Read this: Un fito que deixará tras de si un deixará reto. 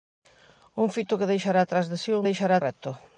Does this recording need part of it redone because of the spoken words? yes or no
no